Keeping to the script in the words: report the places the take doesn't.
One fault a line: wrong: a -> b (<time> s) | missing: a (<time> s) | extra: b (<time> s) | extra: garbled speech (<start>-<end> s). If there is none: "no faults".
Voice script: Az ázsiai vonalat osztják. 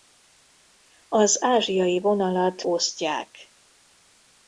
no faults